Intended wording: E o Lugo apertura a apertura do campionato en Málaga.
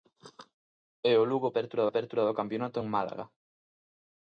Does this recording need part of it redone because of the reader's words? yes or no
no